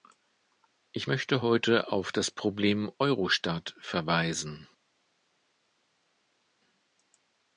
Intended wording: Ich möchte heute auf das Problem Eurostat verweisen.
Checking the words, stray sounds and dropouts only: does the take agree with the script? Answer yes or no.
yes